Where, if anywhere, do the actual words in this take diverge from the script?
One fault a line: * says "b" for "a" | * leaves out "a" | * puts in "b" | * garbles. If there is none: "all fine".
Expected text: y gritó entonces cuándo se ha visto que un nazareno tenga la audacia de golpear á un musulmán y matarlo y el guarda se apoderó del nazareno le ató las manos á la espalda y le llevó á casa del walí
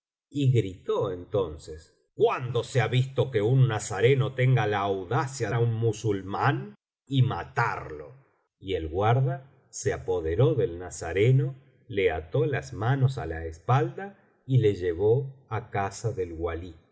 * leaves out "de golpear"